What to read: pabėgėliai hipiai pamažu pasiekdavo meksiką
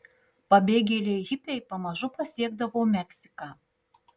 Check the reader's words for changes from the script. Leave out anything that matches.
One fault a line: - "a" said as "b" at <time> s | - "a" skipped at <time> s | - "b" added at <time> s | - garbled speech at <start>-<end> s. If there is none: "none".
none